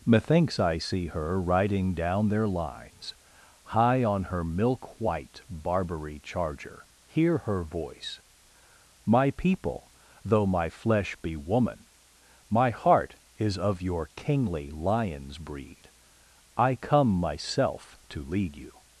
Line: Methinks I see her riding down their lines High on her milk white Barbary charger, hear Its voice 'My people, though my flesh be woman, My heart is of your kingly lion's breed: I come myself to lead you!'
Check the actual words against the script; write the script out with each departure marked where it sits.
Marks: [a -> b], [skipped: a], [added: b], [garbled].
Methinks I see her riding down their lines High on her milk white Barbary charger, hear [Its -> Her] voice 'My people, though my flesh be woman, My heart is of your kingly lion's breed: I come myself to lead you!'